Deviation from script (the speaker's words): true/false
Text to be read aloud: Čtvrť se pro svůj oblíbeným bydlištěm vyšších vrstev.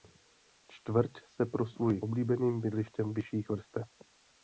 false